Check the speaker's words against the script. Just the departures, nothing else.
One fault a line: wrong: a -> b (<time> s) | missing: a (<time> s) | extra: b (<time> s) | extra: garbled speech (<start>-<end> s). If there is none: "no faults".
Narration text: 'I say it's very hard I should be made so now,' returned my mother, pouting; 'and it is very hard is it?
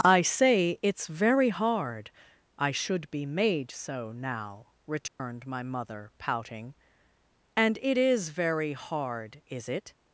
no faults